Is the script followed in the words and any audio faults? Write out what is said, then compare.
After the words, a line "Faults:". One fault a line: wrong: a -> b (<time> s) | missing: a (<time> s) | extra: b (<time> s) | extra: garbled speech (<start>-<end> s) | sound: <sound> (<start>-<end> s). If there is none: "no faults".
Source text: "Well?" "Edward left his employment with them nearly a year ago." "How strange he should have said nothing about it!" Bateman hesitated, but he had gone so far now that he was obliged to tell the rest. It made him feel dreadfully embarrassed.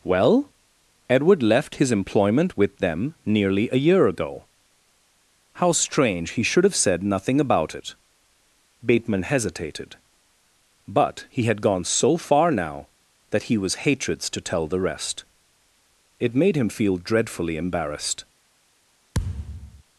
"Well?" "Edward left his employment with them nearly a year ago." "How strange he should have said nothing about it!" Bateman hesitated, but he had gone so far now that he was hatreds to tell the rest. It made him feel dreadfully embarrassed.
Faults:
wrong: obliged -> hatreds (13.9 s)
sound: thud (19.1-19.8 s)